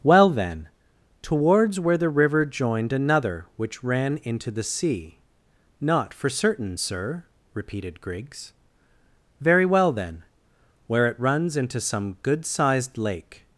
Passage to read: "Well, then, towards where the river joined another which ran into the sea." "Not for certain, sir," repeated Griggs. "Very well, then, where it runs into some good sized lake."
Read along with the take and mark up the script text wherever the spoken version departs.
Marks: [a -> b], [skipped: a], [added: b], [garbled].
"Well, then, towards where the river joined another which ran into the sea." "Not for certain, sir," repeated Griggs. "Very well, then, where it runs into some good sized lake."